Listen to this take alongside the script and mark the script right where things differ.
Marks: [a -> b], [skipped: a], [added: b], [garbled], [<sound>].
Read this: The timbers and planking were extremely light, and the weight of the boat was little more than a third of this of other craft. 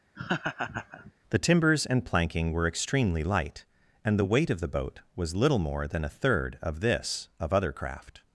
[laugh] The timbers and planking were extremely light, and the weight of the boat was little more than a third of this of other craft.